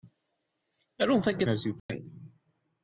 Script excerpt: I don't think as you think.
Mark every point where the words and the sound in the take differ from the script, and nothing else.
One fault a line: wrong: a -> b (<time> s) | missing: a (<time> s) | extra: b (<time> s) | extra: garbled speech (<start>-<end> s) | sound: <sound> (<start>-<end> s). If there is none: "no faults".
sound: dropout (1.8-1.9 s)